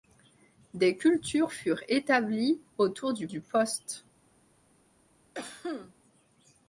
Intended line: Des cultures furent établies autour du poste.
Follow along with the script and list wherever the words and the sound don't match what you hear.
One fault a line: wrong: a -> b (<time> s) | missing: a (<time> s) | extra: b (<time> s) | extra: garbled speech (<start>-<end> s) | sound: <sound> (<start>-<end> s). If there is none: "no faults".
extra: du (3.3 s)
sound: cough (5.3-5.9 s)